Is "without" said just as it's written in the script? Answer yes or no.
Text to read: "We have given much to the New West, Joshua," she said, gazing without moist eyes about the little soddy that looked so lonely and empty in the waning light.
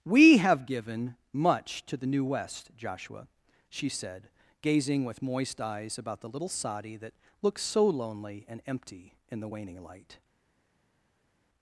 no